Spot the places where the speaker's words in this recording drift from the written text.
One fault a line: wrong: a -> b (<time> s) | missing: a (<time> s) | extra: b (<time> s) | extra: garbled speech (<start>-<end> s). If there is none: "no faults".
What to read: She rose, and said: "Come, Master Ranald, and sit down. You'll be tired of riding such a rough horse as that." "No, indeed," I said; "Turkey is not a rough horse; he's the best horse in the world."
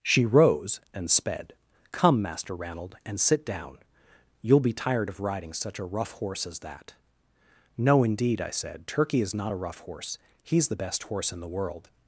wrong: said -> sped (1.1 s)